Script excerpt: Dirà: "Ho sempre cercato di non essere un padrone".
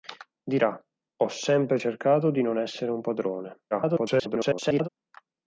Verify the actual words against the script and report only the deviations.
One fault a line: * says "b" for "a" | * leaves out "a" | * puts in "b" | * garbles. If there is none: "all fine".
* garbles